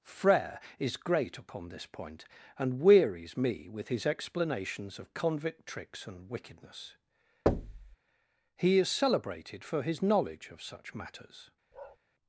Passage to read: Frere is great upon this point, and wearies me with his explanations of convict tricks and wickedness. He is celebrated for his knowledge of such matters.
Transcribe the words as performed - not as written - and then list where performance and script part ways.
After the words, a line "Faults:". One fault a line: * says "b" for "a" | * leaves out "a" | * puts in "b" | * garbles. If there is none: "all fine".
Frere is great upon this point, and wearies me with his explanations of convict tricks and wickedness. He is celebrated for his knowledge of such matters.
Faults:
all fine